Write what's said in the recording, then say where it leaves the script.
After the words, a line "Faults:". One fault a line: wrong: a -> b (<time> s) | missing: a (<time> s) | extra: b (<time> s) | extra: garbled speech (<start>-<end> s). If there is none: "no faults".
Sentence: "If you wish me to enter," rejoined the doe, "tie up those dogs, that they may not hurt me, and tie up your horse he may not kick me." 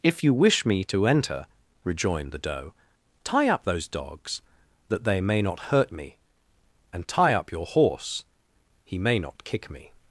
"If you wish me to enter," rejoined the doe, "tie up those dogs, that they may not hurt me, and tie up your horse he may not kick me."
Faults:
no faults